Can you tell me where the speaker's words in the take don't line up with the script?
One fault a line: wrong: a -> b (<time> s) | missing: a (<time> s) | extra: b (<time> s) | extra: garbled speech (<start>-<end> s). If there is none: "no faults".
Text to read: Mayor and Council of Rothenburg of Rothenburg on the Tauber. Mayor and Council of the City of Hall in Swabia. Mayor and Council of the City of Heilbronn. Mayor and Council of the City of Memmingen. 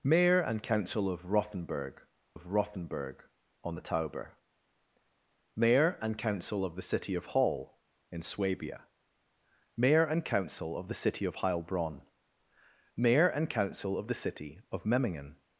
no faults